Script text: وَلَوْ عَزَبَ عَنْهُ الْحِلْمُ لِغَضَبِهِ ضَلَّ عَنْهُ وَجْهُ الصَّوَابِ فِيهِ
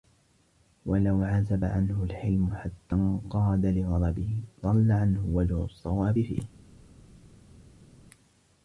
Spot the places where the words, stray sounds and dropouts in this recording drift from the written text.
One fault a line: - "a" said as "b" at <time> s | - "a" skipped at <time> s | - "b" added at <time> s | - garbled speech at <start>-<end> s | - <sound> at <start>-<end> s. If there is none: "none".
- "حَتَّى انْقَادَ" added at 2.5 s